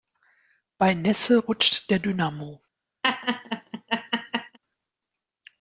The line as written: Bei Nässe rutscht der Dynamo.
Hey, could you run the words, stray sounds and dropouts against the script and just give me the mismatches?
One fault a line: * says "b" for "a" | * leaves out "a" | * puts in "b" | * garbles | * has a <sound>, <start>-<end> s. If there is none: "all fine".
* has a laugh, 3.0-4.6 s